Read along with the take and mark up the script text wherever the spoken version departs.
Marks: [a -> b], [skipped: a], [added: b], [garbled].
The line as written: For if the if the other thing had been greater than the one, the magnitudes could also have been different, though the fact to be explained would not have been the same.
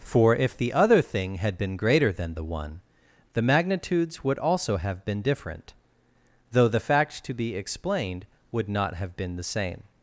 For if the [skipped: if the] other thing had been greater than the one, the magnitudes [could -> would] also have been different, though the fact to be explained would not have been the same.